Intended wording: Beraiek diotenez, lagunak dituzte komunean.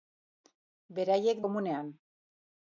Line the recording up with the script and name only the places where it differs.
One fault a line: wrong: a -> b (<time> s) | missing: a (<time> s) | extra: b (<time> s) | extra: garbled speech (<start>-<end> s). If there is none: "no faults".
missing: diotenez lagunak dituzte (1.4 s)